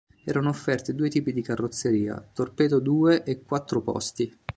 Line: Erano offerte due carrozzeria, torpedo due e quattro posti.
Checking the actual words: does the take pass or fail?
fail